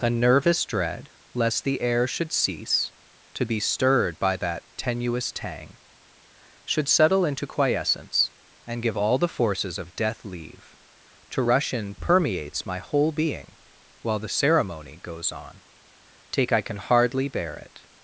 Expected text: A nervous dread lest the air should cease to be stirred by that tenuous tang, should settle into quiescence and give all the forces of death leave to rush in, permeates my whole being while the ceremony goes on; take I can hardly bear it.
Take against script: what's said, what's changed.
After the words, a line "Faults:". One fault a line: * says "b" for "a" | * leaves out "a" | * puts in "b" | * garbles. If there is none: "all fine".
A nervous dread lest the air should cease to be stirred by that tenuous tang, should settle into quiescence and give all the forces of death leave to rush in, permeates my whole being while the ceremony goes on; take I can hardly bear it.
Faults:
all fine